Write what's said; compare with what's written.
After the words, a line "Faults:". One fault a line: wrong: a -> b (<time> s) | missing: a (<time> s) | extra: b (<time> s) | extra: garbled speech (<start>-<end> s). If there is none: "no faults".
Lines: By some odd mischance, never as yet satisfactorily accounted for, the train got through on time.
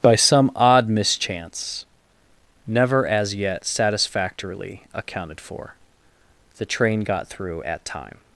By some odd mischance, never as yet satisfactorily accounted for, the train got through at time.
Faults:
wrong: on -> at (7.6 s)